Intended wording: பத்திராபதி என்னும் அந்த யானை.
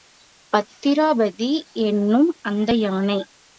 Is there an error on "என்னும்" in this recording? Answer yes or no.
no